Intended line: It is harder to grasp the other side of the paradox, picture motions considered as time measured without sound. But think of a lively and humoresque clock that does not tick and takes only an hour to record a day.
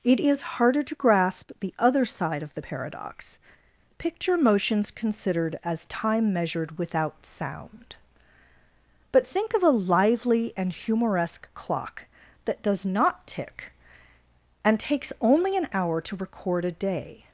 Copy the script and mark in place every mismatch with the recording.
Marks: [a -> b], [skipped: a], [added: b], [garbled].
It is harder to grasp the other side of the paradox, picture motions considered as time measured without sound. But think of a lively and humoresque clock that does not tick and takes only an hour to record a day.